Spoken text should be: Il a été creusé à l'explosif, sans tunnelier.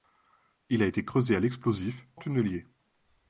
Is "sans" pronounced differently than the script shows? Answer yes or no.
yes